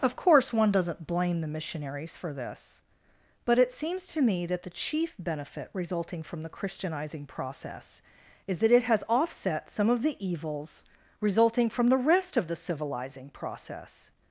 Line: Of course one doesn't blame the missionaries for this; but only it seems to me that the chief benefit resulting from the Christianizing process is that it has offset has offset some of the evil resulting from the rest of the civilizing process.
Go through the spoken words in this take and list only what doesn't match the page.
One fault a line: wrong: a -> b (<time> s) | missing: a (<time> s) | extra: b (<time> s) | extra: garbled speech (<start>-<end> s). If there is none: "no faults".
missing: only (3.6 s)
missing: has offset (9.7 s)
wrong: evil -> evils (10.2 s)